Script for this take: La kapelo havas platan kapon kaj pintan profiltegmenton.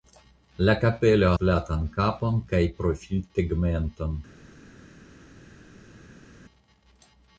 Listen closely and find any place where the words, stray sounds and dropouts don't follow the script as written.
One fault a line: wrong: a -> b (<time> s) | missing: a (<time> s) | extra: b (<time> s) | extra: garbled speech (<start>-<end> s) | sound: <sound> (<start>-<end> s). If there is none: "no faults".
missing: havas (1.3 s)
missing: pintan (2.6 s)